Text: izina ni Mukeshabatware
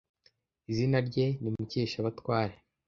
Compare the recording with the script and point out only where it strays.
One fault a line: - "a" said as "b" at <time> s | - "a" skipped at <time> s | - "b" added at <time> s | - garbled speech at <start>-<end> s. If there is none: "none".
- "rye" added at 1.1 s